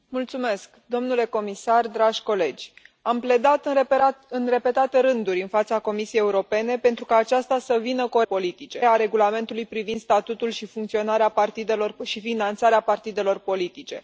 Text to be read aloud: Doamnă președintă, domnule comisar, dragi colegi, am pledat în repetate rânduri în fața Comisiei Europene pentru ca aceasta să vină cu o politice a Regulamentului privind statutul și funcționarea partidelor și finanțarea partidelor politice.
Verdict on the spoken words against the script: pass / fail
pass